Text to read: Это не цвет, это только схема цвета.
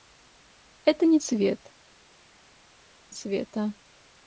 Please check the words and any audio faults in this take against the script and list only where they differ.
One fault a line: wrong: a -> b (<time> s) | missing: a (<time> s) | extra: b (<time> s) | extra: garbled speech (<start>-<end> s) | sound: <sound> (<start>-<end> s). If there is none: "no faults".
missing: это только схема (1.7 s)